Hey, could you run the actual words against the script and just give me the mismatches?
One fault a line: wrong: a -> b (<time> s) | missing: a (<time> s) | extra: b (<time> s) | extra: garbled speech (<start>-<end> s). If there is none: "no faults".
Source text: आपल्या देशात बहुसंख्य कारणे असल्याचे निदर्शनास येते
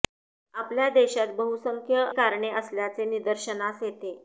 no faults